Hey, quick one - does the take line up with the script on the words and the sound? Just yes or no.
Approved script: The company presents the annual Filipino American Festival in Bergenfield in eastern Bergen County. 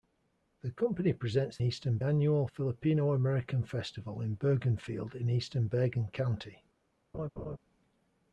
no